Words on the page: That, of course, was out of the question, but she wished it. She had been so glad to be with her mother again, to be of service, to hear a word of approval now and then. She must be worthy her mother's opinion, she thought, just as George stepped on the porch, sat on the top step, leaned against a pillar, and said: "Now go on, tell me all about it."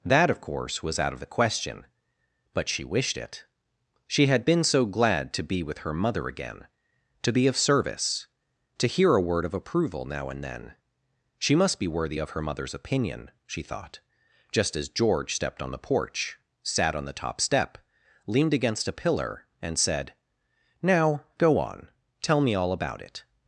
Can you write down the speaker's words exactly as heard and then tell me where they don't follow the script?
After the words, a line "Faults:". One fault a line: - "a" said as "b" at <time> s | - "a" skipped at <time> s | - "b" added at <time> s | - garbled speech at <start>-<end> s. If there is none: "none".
That, of course, was out of the question, but she wished it. She had been so glad to be with her mother again, to be of service, to hear a word of approval now and then. She must be worthy of her mother's opinion, she thought, just as George stepped on the porch, sat on the top step, leaned against a pillar, and said: "Now go on, tell me all about it."
Faults:
- "of" added at 12.2 s